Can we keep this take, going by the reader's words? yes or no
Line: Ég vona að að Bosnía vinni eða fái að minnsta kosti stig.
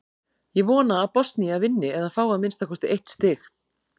no